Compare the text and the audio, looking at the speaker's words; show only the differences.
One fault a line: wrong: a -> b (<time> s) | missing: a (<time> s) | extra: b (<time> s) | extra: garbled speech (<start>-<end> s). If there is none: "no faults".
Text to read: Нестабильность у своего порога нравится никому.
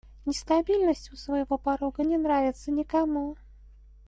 extra: не (2.0 s)